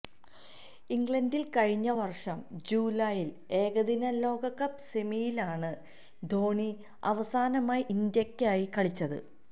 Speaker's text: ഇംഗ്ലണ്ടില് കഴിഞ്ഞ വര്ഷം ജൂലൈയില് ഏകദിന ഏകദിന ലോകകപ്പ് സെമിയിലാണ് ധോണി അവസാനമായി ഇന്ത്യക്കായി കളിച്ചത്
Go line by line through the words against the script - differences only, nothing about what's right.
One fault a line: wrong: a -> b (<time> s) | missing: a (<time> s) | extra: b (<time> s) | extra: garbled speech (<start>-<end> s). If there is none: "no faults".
missing: ഏകദിന (4.1 s)